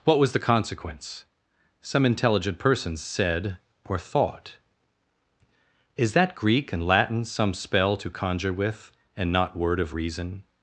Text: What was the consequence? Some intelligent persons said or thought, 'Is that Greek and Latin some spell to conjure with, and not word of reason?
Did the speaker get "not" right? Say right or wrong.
right